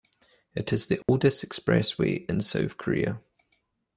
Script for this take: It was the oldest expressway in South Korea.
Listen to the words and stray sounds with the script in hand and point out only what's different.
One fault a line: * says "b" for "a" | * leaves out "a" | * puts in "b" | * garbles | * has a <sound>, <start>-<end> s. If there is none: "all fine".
* says "is" for "was"
* has a dropout, 1.0-1.1 s